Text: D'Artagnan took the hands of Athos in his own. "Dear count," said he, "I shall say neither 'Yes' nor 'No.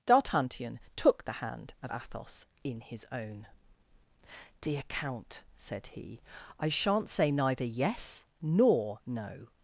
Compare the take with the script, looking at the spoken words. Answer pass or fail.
fail